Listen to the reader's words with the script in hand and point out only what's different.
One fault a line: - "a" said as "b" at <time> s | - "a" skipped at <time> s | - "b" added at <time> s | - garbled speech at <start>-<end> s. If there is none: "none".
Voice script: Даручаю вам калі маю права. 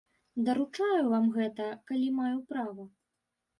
- "гэта" added at 1.4 s